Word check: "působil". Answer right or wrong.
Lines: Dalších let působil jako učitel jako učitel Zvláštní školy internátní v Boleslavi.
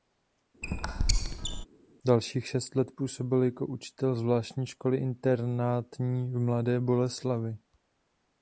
right